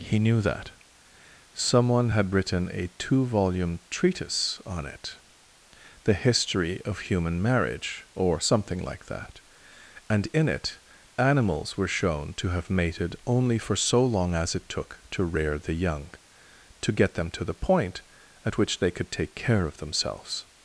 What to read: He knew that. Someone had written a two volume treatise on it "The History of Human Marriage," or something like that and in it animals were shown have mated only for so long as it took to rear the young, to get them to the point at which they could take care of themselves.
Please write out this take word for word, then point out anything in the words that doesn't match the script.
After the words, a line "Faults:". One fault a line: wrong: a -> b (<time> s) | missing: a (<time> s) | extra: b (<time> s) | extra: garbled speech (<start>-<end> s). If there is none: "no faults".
He knew that. Someone had written a two volume treatise on it "The History of Human Marriage," or something like that and in it animals were shown to have mated only for so long as it took to rear the young, to get them to the point at which they could take care of themselves.
Faults:
extra: to (12.3 s)